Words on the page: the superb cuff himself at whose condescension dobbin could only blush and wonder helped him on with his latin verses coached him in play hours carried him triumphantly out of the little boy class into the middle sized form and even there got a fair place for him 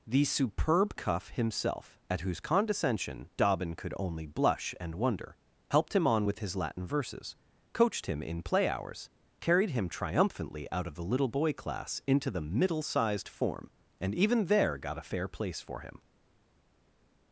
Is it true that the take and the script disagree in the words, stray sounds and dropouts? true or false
false